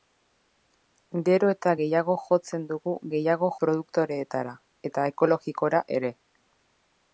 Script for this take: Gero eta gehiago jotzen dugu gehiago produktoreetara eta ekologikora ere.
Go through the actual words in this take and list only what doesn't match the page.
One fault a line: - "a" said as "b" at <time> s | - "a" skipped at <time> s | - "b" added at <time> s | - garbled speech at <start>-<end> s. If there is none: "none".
none